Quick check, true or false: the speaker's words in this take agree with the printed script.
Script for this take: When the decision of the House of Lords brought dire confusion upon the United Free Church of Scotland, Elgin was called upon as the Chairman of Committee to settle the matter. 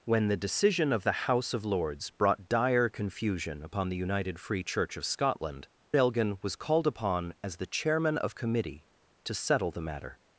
true